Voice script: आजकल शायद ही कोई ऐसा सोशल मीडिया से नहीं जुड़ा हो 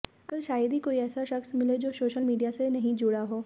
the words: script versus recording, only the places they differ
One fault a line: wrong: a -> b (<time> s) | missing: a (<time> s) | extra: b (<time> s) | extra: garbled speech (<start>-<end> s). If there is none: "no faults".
extra: शख्स मिले जो (1.2 s)